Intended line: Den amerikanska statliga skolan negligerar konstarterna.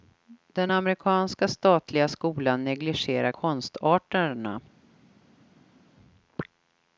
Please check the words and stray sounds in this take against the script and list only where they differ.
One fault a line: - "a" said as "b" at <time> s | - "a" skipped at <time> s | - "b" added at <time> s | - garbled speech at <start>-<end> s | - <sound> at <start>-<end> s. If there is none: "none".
none